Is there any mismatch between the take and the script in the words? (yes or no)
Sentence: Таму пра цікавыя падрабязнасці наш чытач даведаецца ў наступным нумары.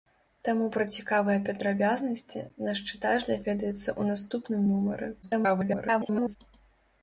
yes